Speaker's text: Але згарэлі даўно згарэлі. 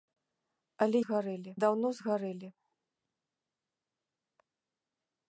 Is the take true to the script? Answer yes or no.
yes